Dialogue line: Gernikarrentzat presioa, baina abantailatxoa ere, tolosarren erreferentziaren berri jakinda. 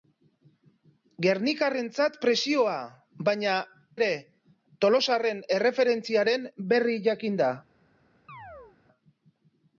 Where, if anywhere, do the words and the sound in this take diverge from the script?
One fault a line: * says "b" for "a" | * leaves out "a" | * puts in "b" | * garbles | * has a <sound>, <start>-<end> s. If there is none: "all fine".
* leaves out "abantailatxoa"
* has a chirp, 8.3-8.8 s